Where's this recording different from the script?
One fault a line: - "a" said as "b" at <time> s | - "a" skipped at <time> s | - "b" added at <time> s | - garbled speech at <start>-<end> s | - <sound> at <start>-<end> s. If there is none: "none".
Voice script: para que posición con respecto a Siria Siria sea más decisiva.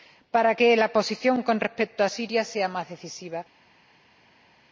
- "la" added at 0.8 s
- "Siria" skipped at 2.4 s